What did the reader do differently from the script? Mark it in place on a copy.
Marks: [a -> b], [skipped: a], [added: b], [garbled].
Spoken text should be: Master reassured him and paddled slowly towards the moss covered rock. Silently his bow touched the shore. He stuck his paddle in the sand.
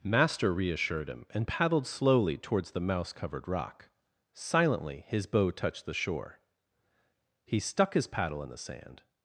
Master reassured him and paddled slowly towards the [moss -> mouse] covered rock. Silently his bow touched the shore. He stuck his paddle in the sand.